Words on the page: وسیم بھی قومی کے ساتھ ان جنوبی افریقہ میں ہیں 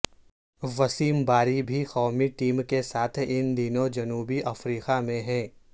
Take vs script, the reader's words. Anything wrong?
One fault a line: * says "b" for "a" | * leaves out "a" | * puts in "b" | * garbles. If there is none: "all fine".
* puts in "باری"
* puts in "ٹیم"
* puts in "دنوں"